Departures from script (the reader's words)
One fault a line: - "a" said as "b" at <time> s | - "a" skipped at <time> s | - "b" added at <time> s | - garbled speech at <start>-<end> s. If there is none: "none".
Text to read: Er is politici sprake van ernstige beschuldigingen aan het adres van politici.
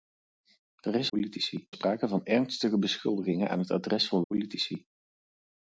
none